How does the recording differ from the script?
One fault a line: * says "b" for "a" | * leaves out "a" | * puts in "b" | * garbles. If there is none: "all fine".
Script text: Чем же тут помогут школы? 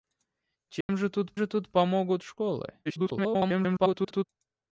* puts in "же тут"
* garbles